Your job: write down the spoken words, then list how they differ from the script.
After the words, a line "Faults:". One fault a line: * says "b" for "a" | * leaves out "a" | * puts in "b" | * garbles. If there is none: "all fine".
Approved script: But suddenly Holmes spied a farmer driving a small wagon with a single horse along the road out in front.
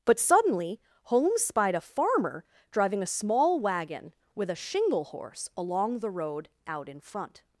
But suddenly Holmes spied a farmer driving a small wagon with a shingle horse along the road out in front.
Faults:
* says "shingle" for "single"